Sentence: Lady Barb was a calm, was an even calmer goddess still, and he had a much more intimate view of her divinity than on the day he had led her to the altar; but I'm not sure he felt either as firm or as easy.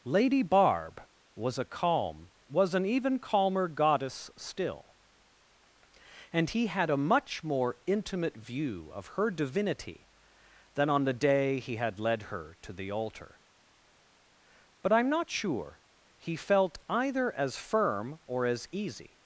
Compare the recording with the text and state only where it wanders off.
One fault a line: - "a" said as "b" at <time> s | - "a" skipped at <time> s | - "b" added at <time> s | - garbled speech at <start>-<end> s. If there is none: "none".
none